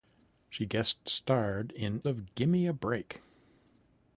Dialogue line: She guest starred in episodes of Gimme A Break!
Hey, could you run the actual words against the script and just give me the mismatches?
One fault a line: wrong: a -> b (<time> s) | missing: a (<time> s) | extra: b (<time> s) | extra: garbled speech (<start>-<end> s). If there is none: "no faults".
missing: episodes (2.0 s)